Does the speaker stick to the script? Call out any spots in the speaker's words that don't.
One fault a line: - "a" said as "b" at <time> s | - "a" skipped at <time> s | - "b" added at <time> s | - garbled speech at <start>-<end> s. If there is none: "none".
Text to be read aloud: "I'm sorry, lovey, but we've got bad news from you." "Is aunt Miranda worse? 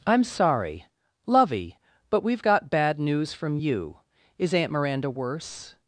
none